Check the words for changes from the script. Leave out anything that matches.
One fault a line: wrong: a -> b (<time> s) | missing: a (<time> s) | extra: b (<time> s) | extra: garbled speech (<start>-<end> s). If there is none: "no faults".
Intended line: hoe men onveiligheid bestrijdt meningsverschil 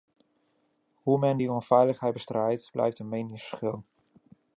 extra: die (1.4 s)
extra: blijft een (2.7 s)